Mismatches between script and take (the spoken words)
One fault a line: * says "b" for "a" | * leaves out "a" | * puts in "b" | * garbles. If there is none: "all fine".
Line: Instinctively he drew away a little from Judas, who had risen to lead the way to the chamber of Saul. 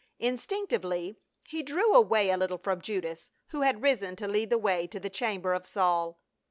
all fine